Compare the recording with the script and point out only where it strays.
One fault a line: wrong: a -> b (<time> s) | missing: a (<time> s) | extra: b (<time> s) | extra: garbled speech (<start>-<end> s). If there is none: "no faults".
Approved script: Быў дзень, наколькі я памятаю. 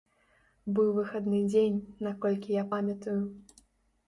extra: выхадны (0.9 s)